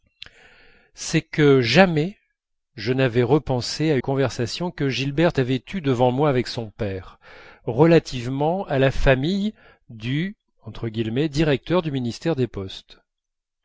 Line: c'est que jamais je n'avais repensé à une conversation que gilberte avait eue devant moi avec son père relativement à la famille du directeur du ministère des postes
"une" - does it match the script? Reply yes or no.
no